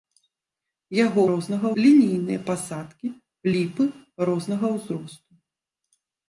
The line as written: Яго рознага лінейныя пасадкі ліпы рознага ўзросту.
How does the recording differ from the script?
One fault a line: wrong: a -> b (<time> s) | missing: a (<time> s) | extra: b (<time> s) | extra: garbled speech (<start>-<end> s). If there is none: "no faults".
no faults